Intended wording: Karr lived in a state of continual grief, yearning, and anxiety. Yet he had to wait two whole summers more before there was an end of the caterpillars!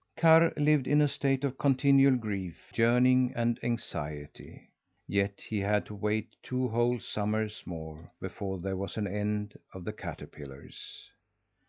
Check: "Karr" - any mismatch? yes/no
no